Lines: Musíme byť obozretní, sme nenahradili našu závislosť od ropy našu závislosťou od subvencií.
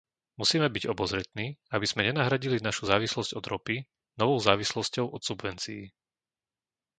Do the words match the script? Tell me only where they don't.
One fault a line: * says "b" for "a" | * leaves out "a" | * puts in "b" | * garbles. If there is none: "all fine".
* puts in "aby"
* says "novou" for "našu"